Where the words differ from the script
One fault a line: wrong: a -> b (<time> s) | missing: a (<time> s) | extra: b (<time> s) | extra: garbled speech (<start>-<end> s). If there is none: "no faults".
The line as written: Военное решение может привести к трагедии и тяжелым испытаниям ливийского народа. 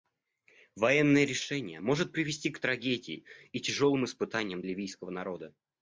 no faults